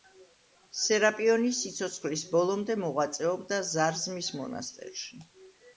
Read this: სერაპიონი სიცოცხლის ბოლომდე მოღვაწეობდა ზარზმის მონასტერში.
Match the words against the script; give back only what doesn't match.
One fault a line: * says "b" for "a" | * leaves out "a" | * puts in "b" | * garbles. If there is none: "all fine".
all fine